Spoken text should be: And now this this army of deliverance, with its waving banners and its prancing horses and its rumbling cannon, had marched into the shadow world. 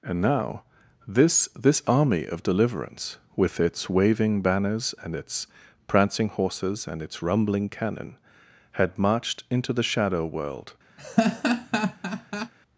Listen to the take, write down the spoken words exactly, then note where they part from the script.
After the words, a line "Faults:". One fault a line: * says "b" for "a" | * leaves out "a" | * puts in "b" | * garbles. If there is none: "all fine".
And now this this army of deliverance, with its waving banners and its prancing horses and its rumbling cannon, had marched into the shadow world.
Faults:
all fine